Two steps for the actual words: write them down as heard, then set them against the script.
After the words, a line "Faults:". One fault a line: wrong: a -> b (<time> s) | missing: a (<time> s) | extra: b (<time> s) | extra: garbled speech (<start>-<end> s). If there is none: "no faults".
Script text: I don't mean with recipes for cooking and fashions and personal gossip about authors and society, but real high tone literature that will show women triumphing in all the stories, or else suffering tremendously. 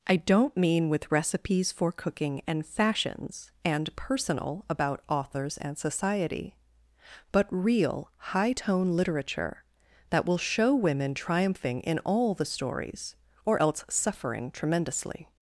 I don't mean with recipes for cooking and fashions and personal about authors and society, but real high tone literature that will show women triumphing in all the stories, or else suffering tremendously.
Faults:
missing: gossip (4.7 s)